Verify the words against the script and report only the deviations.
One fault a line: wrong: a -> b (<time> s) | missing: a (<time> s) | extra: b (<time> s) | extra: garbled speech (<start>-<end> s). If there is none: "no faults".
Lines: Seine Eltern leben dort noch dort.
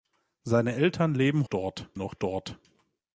no faults